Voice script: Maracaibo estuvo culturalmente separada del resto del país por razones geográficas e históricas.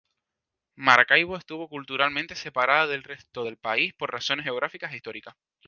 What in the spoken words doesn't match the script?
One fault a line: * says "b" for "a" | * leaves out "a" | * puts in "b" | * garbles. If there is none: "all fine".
all fine